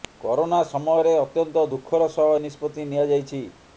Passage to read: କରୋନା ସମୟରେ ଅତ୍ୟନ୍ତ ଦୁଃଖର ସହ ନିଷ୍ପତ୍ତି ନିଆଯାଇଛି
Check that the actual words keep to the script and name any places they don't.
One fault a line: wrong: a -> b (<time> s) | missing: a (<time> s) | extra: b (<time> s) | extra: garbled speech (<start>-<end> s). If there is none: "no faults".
no faults